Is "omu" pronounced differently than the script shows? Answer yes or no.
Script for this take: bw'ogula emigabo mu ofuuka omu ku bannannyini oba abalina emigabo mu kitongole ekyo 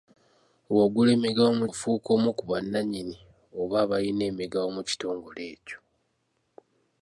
no